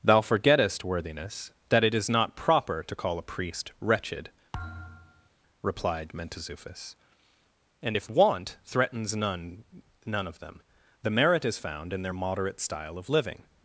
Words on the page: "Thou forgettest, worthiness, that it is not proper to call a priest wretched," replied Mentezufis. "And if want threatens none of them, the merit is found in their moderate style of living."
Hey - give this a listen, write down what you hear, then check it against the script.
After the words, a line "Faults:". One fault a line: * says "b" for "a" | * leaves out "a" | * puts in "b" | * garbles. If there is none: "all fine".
"Thou forgettest, worthiness, that it is not proper to call a priest wretched," replied Mentezufis. "And if want threatens none none of them, the merit is found in their moderate style of living."
Faults:
* puts in "none"